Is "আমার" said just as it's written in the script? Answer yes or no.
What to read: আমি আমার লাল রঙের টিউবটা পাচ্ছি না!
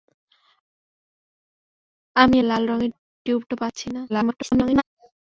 no